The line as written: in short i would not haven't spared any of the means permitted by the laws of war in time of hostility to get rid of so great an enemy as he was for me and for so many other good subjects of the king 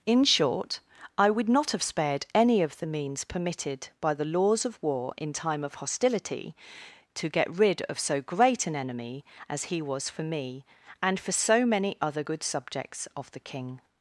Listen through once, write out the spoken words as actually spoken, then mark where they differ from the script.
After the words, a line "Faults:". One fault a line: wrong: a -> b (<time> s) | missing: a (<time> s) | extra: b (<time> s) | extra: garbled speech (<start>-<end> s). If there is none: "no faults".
in short i would not have spared any of the means permitted by the laws of war in time of hostility to get rid of so great an enemy as he was for me and for so many other good subjects of the king
Faults:
wrong: haven't -> have (1.7 s)